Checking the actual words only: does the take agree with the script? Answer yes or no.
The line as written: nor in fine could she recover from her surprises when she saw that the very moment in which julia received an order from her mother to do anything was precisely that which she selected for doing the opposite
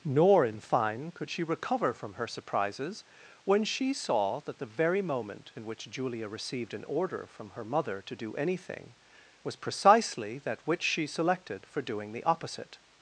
yes